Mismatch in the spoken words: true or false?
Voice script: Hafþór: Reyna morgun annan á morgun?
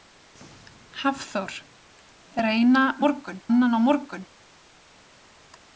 false